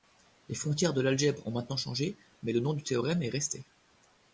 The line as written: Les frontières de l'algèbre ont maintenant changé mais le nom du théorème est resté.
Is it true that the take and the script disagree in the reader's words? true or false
false